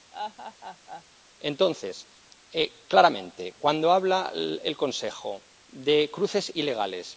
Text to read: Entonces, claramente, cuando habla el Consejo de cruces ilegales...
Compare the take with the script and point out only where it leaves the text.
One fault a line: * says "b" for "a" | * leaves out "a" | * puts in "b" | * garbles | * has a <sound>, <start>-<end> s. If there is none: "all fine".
* has a laugh, 0.1-1.0 s